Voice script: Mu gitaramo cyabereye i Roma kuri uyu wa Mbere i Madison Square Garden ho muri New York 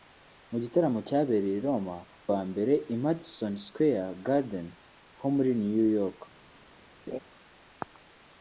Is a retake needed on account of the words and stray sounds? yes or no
yes